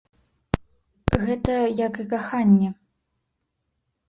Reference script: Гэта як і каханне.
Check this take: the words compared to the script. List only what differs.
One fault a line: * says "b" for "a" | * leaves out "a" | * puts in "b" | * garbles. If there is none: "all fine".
all fine